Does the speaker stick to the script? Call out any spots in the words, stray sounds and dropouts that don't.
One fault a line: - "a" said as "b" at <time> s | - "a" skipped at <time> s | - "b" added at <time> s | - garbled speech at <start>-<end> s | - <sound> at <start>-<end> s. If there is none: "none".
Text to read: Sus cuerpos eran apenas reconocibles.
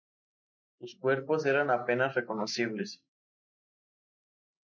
none